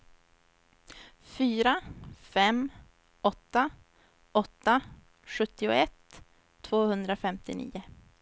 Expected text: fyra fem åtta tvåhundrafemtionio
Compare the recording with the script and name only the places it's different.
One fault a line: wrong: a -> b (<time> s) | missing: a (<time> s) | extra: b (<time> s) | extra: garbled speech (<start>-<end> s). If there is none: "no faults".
extra: åtta sjuttioett (4.3 s)